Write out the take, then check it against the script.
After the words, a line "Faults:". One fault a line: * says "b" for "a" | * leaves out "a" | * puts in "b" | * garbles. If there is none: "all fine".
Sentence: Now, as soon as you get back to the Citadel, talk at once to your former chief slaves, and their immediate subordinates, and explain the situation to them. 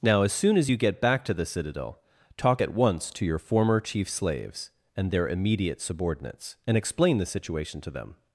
Now, as soon as you get back to the Citadel, talk at once to your former chief slaves, and their immediate subordinates, and explain the situation to them.
Faults:
all fine